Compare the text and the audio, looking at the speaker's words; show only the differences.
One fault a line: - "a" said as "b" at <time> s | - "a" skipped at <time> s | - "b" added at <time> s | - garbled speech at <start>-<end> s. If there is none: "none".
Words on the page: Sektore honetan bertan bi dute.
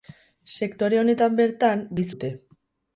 none